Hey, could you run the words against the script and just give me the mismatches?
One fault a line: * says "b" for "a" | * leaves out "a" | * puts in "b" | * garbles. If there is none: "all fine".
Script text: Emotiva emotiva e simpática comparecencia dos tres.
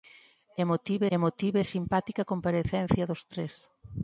all fine